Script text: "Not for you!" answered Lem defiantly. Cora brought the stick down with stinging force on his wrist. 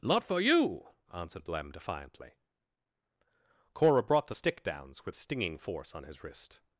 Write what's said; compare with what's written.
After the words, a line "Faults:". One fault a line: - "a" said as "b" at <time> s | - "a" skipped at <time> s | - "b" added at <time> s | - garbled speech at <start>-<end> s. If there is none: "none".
"Not for you!" answered Lem defiantly. Cora brought the stick downs with stinging force on his wrist.
Faults:
- "down" said as "downs" at 4.6 s